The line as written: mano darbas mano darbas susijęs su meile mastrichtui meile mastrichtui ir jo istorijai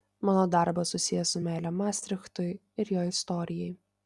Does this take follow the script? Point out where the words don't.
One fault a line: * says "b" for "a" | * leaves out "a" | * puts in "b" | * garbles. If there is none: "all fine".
* leaves out "mano darbas"
* leaves out "meile mastrichtui"